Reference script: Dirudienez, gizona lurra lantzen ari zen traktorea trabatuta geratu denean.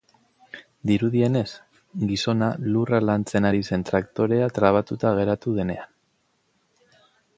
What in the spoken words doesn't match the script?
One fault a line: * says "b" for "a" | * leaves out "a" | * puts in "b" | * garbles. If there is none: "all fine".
all fine